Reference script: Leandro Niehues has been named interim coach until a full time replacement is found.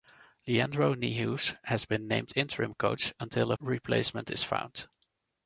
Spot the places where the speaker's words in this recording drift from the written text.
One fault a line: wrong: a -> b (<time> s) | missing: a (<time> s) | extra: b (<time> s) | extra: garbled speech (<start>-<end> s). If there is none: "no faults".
missing: full time (3.6 s)